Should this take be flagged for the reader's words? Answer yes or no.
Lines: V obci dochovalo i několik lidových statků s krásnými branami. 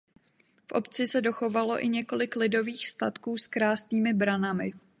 yes